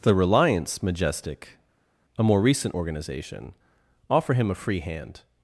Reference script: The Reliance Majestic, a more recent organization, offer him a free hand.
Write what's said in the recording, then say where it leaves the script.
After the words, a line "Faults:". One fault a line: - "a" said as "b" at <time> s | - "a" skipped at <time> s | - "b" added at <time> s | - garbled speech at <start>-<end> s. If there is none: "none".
The Reliance Majestic, a more recent organization, offer him a free hand.
Faults:
none